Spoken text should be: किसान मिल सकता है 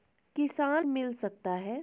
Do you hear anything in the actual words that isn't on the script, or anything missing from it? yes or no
no